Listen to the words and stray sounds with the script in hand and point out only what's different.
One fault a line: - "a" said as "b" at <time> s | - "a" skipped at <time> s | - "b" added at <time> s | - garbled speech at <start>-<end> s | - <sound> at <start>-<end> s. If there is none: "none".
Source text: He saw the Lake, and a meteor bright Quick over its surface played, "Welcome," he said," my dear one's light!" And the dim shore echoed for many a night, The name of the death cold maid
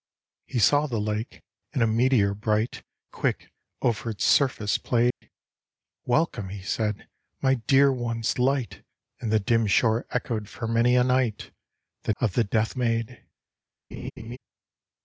- dropout at 5.1-5.2 s
- "name" skipped at 12.1 s
- "cold" skipped at 12.8 s
- laugh at 13.9-14.4 s